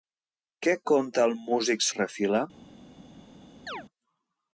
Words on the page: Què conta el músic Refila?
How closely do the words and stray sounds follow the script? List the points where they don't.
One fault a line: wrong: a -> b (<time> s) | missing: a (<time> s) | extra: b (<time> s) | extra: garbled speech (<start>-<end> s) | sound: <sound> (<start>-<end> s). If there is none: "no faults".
sound: chirp (3.7-3.8 s)